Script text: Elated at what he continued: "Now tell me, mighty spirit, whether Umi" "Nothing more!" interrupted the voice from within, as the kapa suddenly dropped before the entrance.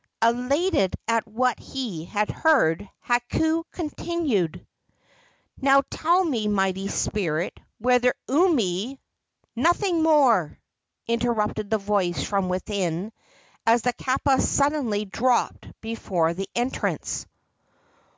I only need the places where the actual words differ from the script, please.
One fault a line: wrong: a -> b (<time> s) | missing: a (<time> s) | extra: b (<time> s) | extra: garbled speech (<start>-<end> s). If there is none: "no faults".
extra: had heard Hakau (2.0 s)